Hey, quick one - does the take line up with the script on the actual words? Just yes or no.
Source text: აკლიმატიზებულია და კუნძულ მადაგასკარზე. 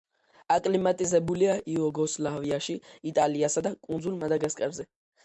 no